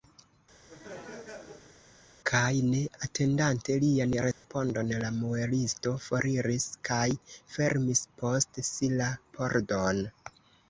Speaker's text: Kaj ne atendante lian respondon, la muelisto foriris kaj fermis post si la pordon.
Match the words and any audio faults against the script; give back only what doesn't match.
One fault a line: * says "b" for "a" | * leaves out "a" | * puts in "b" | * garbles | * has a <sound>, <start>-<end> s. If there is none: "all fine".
* has a laugh, 0.7-1.8 s
* has a dropout, 4.3-4.4 s